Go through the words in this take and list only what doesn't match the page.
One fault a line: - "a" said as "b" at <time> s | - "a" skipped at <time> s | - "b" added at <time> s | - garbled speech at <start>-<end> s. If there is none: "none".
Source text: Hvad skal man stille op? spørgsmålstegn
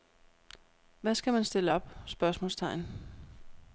none